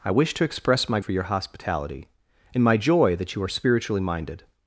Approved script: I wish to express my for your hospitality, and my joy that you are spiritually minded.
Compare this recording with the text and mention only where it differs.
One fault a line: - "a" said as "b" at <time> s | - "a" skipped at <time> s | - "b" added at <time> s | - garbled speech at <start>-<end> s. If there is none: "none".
none